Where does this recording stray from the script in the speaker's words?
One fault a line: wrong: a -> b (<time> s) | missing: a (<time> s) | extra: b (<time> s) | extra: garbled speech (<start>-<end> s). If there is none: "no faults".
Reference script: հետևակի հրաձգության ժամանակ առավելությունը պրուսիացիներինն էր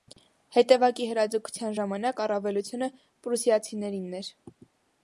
no faults